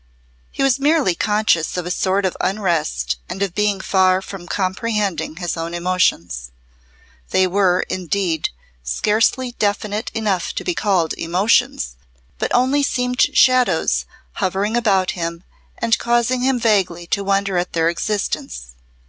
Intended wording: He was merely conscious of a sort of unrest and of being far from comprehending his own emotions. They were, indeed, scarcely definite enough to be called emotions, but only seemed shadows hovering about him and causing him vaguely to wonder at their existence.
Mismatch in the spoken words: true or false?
false